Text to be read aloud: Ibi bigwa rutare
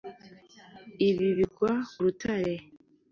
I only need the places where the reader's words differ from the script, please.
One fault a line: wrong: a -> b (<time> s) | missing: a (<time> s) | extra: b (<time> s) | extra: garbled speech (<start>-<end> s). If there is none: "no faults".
no faults